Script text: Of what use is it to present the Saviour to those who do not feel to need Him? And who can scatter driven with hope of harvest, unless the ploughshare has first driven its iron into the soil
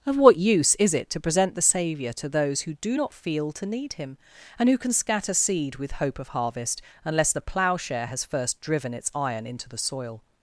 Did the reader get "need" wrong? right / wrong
right